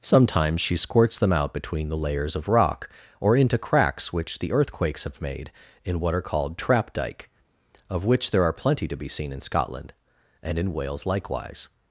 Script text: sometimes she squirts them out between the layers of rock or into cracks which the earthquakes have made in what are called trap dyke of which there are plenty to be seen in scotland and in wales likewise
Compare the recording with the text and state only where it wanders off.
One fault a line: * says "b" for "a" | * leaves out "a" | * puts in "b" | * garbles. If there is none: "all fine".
all fine